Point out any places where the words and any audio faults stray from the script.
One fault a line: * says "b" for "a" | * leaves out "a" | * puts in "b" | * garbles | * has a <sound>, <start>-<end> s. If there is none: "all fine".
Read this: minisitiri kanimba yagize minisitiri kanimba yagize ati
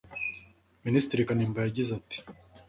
* leaves out "minisitiri kanimba yagize"